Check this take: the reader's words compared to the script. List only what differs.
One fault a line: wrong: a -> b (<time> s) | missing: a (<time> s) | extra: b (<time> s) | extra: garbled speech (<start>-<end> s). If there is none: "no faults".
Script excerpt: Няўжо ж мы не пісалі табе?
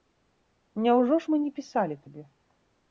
no faults